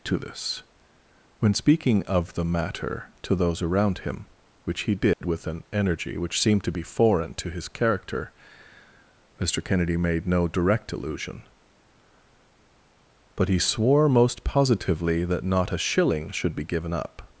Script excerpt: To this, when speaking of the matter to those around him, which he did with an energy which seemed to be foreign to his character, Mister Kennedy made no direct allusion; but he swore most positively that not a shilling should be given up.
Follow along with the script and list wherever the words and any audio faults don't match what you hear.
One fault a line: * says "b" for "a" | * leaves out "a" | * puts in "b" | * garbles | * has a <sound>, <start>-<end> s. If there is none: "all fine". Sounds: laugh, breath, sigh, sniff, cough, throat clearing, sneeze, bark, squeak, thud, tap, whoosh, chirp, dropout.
* has a dropout, 5.1-5.2 s